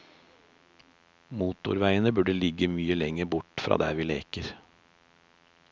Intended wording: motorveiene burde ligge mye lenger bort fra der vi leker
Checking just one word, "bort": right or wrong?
right